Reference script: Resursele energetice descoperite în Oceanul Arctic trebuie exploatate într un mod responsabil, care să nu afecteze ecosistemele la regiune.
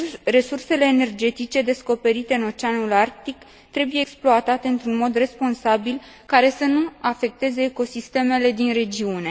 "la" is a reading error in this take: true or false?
true